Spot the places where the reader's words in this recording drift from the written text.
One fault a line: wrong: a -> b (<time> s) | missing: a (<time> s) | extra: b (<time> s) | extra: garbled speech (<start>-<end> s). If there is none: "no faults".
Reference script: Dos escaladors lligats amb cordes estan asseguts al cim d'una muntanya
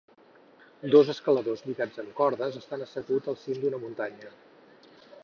no faults